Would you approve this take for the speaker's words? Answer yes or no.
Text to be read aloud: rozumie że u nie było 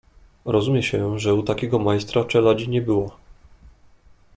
no